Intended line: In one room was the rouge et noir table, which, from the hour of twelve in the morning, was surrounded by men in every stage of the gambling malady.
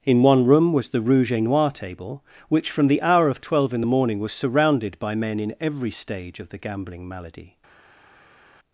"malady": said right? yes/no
yes